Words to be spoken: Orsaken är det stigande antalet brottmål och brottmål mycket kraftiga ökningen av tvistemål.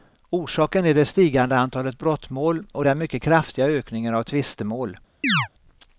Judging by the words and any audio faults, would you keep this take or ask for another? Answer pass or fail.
fail